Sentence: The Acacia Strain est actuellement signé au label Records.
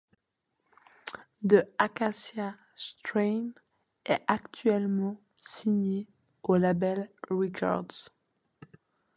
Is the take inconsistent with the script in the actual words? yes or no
no